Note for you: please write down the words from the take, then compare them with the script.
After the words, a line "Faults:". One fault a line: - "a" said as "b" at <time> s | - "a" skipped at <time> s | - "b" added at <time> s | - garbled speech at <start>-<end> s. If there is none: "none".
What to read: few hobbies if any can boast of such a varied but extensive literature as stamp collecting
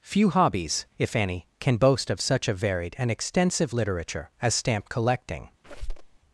few hobbies if any can boast of such a varied and extensive literature as stamp collecting
Faults:
- "but" said as "and" at 3.0 s